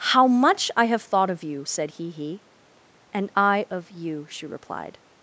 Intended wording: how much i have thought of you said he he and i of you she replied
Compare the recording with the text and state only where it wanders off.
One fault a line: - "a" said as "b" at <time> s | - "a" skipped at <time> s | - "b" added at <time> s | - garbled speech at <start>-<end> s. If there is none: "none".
none